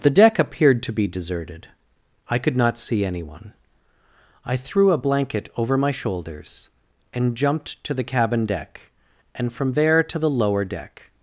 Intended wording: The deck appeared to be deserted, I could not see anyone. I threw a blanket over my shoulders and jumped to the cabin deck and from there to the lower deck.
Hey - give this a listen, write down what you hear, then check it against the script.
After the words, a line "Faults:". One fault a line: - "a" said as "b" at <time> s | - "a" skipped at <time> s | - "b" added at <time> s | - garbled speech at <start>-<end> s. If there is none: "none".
The deck appeared to be deserted, I could not see anyone. I threw a blanket over my shoulders and jumped to the cabin deck and from there to the lower deck.
Faults:
none